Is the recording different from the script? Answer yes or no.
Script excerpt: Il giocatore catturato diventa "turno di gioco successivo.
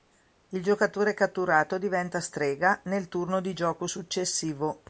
yes